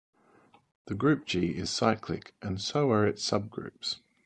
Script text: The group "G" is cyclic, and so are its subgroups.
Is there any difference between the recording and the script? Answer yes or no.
no